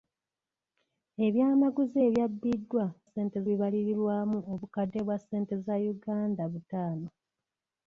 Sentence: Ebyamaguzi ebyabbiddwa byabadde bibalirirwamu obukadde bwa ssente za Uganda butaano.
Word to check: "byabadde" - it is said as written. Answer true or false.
false